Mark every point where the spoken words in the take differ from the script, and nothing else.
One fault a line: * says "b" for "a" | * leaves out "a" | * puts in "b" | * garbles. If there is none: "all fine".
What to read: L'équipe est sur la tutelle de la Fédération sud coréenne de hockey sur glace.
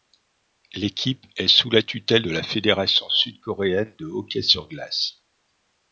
* says "sous" for "sur"